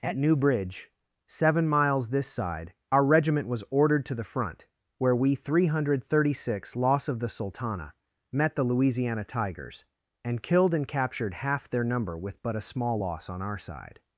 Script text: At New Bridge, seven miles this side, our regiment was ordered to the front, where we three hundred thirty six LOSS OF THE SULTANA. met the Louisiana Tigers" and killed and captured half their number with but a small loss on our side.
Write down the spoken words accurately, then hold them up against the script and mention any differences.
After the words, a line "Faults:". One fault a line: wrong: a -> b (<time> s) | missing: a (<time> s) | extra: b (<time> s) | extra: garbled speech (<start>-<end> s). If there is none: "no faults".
At New Bridge, seven miles this side, our regiment was ordered to the front, where we three hundred thirty six LOSS OF THE SULTANA. met the Louisiana Tigers" and killed and captured half their number with but a small loss on our side.
Faults:
no faults